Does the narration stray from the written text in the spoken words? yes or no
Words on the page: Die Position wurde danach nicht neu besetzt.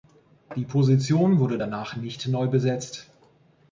no